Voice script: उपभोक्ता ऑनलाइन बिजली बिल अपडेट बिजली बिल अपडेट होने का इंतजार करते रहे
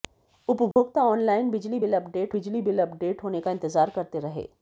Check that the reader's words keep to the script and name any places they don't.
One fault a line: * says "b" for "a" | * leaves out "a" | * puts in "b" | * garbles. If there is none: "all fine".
all fine